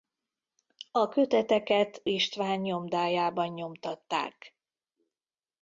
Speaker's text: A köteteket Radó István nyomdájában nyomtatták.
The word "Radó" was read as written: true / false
false